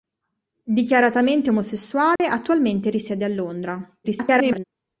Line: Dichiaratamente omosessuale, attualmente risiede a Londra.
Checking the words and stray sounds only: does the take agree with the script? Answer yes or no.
no